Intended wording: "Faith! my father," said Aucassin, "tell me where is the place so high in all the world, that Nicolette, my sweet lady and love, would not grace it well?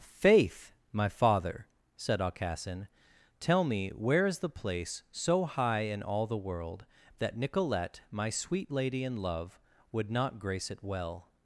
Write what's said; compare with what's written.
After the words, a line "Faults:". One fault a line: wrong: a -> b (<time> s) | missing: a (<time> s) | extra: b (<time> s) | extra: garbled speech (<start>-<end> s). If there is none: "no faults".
"Faith! my father," said Aucassin, "tell me where is the place so high in all the world, that Nicolette, my sweet lady and love, would not grace it well?
Faults:
no faults